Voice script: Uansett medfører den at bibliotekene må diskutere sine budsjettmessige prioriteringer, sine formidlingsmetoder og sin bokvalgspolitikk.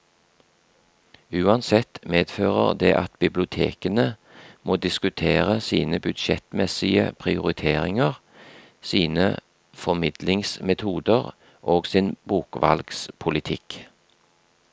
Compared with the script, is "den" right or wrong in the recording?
wrong